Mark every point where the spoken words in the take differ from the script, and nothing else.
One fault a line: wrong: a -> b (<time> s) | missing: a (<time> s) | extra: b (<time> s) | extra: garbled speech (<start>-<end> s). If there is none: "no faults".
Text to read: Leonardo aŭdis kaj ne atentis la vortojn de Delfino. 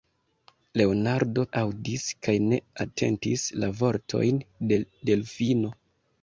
no faults